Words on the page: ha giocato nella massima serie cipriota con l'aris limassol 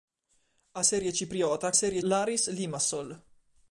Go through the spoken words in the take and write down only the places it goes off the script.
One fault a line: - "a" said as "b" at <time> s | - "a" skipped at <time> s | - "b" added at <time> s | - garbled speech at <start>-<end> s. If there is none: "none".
- "giocato nella massima" skipped at 0.8 s
- "con" said as "serie" at 1.7 s